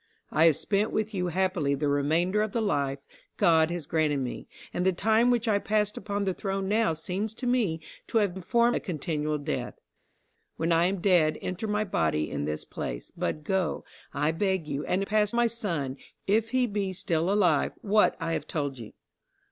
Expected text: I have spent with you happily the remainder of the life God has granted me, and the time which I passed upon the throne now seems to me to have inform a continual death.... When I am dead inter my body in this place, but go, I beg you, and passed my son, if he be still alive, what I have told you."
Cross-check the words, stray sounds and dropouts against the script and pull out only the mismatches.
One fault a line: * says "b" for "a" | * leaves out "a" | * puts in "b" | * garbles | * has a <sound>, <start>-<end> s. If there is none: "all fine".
all fine